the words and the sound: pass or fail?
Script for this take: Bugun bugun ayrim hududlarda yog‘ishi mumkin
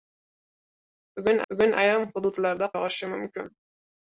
pass